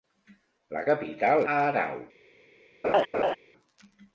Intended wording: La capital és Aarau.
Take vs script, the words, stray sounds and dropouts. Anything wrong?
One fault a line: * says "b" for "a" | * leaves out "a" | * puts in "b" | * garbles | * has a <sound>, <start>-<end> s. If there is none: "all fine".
* leaves out "és"
* has a laugh, 2.8-3.4 s